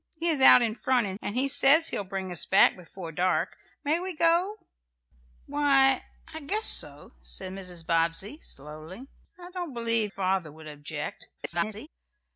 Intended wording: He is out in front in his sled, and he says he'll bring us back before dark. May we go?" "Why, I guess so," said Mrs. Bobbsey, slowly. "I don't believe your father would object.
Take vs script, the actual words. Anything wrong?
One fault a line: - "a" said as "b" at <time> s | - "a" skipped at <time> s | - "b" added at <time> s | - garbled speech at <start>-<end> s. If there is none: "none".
- "his sled" skipped at 1.2 s
- "your" skipped at 10.1 s
- garbled speech at 11.4-11.9 s